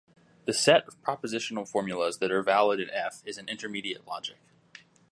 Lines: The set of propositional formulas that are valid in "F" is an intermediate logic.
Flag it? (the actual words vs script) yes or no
no